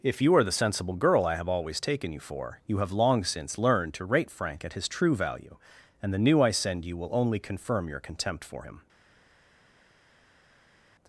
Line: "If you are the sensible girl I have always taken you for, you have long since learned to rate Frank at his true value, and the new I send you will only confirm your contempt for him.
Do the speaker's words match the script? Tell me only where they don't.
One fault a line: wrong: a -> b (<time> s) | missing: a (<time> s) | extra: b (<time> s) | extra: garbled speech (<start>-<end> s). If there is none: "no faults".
no faults